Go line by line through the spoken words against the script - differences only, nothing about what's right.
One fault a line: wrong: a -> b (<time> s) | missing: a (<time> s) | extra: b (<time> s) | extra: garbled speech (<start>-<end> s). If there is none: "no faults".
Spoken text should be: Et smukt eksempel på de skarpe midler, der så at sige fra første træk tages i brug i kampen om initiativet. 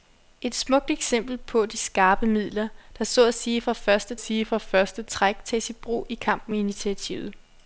extra: sige fra første (4.2 s)
missing: om (6.5 s)